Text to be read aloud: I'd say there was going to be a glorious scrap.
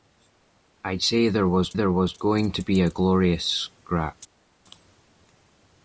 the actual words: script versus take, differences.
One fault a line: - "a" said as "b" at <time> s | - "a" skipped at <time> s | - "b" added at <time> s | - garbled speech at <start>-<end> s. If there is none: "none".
- "there was" added at 1.7 s